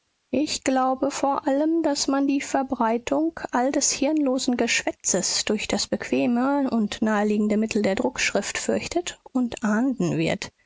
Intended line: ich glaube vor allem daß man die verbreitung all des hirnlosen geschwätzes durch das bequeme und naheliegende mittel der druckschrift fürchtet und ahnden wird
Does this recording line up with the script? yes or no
yes